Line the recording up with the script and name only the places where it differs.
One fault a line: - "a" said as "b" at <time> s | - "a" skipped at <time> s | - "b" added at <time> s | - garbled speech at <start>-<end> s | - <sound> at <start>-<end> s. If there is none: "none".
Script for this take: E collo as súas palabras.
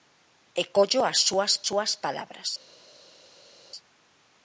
- "súas" added at 1.7 s